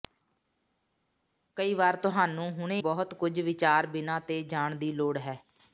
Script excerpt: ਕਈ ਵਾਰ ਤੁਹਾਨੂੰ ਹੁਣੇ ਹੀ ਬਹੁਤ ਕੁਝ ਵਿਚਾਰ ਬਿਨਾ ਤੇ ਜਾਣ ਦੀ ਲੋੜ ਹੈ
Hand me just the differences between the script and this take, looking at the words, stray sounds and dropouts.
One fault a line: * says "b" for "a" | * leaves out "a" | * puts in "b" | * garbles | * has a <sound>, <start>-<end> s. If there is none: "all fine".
* leaves out "ਹੀ"